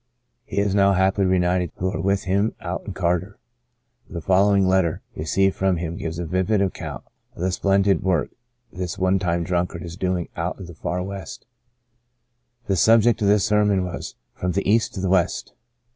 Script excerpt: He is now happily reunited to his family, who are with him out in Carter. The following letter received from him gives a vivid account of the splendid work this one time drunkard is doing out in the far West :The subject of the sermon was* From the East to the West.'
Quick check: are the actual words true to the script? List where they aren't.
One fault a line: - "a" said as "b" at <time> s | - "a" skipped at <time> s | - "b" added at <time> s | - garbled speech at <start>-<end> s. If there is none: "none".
- "to his family" skipped at 1.7 s